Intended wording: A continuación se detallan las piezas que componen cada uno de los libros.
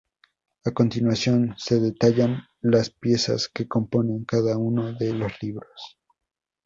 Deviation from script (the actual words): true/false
false